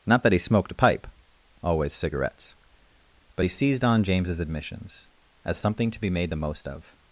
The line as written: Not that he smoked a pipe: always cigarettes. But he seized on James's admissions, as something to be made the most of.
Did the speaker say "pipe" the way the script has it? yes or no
yes